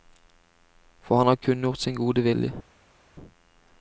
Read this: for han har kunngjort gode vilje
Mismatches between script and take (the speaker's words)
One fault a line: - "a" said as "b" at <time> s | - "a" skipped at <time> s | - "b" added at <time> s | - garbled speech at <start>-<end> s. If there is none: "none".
- "sin" added at 1.8 s